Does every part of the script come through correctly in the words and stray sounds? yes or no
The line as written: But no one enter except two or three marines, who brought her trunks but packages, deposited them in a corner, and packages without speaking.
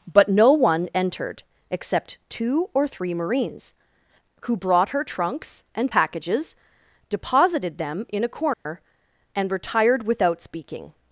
no